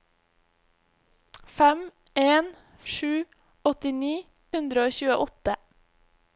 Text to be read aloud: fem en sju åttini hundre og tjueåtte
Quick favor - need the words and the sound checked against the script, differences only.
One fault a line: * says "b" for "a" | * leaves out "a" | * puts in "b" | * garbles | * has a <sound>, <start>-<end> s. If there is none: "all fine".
all fine